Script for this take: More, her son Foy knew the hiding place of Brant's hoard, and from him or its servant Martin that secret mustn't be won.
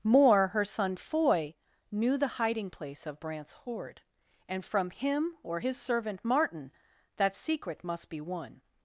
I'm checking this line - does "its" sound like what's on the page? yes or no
no